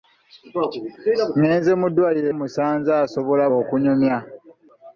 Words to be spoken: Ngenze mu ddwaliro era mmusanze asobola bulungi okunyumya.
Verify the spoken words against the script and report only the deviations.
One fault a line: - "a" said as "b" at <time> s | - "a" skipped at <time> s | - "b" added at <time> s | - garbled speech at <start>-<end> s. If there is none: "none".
- "era" skipped at 2.3 s
- "bulungi" skipped at 3.4 s